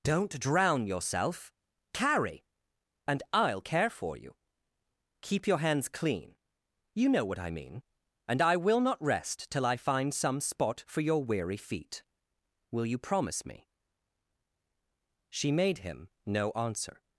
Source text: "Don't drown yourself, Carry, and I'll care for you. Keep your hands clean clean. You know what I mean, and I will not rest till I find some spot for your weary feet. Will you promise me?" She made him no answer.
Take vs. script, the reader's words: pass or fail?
fail